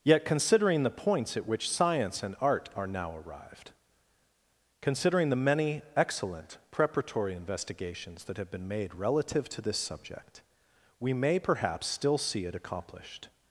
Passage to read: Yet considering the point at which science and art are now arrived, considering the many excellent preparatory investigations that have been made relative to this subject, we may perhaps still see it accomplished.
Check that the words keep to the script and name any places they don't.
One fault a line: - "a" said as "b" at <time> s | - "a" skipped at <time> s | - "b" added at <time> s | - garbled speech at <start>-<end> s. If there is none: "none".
- "point" said as "points" at 0.9 s